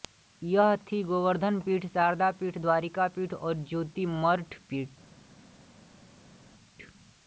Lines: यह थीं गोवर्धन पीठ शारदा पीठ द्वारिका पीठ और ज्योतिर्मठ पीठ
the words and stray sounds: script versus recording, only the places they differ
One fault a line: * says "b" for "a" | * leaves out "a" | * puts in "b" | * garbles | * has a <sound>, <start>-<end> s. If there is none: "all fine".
all fine